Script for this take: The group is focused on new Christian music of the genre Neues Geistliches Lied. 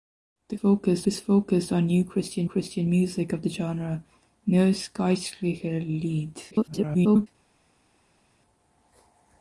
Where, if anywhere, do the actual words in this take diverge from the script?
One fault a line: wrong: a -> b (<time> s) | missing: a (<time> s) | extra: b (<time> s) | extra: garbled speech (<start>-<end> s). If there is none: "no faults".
wrong: group -> focused (0.5 s)
extra: Christian (2.4 s)
extra: garbled speech (6.5-7.3 s)